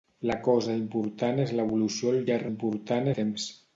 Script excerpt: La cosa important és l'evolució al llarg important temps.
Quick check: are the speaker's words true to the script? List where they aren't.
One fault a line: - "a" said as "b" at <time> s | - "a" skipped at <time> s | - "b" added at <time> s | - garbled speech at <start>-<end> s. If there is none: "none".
none